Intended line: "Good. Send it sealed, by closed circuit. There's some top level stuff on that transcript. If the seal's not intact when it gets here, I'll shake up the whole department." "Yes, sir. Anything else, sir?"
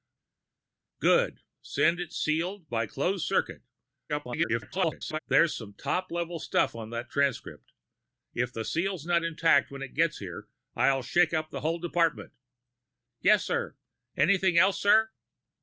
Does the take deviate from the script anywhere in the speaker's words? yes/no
yes